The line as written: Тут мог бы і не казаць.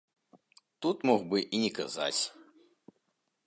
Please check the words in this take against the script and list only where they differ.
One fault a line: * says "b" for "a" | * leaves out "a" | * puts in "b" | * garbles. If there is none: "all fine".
all fine